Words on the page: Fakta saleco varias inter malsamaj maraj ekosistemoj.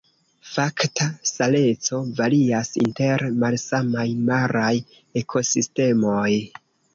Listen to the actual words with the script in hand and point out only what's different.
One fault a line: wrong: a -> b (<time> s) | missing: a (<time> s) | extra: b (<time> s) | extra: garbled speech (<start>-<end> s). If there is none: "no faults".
no faults